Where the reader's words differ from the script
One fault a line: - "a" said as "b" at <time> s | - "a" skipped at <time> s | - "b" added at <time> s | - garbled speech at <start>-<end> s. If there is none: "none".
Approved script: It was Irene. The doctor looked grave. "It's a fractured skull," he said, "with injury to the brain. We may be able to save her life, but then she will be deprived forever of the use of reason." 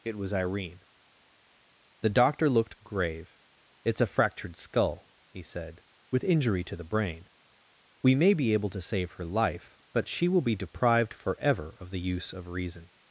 - "then" skipped at 10.1 s